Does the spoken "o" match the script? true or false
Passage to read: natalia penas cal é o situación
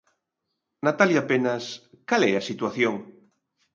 false